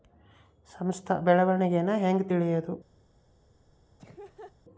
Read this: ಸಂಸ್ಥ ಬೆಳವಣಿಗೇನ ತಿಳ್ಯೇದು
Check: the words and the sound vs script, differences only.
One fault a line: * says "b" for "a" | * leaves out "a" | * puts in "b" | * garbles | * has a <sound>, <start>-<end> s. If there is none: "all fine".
* puts in "ಹೆಂಗ್"
* has a laugh, 4.0-4.6 s